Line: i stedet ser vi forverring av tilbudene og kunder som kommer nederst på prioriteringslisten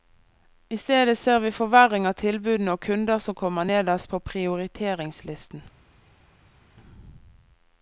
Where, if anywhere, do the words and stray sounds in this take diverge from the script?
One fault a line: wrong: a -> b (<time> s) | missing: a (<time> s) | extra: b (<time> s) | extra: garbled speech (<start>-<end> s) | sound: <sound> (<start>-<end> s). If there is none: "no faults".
no faults